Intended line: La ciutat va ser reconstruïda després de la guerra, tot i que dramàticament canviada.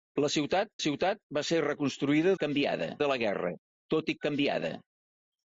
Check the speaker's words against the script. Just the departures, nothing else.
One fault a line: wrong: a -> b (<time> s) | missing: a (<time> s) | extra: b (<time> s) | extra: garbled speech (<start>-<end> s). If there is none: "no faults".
extra: ciutat (0.8 s)
wrong: després -> canviada (2.4 s)
missing: que dramàticament (4.2 s)